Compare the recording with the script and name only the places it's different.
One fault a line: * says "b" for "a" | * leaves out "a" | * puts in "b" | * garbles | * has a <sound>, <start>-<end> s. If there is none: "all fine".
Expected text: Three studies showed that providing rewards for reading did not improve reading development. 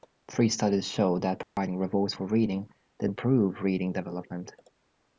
* has a dropout, 1.4-1.6 s
* leaves out "not"